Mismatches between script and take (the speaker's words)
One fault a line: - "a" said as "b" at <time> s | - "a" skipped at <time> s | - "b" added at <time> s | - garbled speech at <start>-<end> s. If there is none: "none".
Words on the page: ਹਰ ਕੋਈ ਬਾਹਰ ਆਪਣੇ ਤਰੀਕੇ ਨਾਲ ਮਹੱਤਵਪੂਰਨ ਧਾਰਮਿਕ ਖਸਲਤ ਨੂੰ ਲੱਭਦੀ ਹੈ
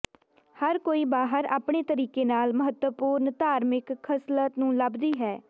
none